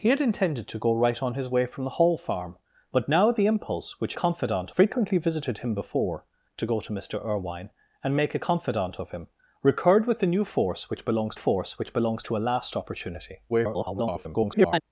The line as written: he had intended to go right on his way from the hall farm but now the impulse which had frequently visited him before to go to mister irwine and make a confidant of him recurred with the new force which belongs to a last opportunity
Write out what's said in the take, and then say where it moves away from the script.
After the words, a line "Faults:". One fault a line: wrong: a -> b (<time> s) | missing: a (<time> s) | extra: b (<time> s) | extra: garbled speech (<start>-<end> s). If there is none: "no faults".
he had intended to go right on his way from the hall farm but now the impulse which confidant frequently visited him before to go to mister irwine and make a confidant of him recurred with the new force which belongs force which belongs to a last opportunity [garbled]
Faults:
wrong: had -> confidant (4.1 s)
extra: force which belongs (11.3 s)
extra: garbled speech (13.5-14.8 s)